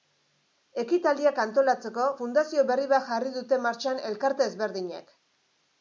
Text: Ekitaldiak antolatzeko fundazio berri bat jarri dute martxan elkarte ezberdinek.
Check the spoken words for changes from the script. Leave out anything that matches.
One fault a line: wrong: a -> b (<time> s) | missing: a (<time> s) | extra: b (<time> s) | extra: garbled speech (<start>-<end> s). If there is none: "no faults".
no faults